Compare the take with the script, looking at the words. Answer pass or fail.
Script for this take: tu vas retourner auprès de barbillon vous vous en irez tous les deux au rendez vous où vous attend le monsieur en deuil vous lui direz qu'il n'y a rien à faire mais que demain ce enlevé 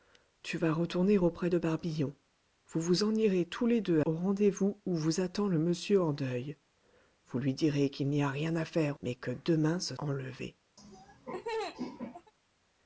pass